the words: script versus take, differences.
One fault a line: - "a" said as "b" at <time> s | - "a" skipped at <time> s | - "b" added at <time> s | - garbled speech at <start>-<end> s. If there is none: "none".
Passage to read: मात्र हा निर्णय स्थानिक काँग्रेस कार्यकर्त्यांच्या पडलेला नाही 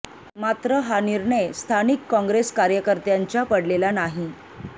none